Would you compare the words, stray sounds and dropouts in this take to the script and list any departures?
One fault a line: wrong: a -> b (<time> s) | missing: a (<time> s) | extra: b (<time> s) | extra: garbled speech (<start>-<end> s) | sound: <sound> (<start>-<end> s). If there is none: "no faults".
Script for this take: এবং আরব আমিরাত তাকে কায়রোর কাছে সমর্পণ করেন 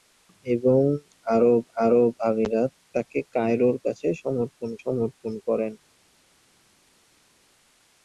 extra: আরব (1.8 s)
extra: সমর্পণ (4.8 s)